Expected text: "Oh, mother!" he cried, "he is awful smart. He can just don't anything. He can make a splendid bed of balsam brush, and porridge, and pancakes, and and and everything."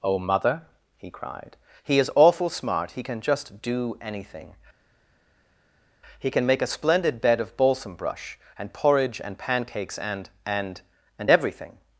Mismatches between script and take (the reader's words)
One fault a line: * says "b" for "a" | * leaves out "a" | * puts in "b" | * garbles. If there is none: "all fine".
* says "do" for "don't"